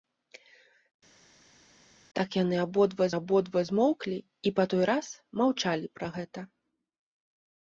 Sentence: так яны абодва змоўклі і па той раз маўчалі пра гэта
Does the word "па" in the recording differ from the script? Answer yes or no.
no